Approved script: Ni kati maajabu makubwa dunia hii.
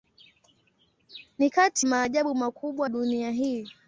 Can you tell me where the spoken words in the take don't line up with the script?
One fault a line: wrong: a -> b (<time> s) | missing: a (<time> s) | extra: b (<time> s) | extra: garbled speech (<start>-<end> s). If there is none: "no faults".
no faults